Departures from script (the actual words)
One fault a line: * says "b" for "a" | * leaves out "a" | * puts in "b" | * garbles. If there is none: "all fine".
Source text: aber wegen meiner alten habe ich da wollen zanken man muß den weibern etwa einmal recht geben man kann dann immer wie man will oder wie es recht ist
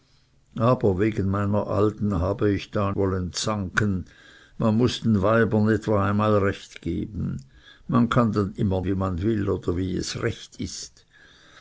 all fine